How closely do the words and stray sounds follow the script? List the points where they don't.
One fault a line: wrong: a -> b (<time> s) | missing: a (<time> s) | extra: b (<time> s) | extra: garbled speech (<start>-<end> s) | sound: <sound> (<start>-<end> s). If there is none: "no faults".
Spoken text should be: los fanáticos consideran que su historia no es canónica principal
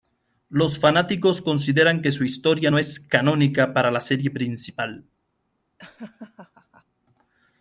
extra: para la serie (3.7 s)
sound: laugh (5.8-6.8 s)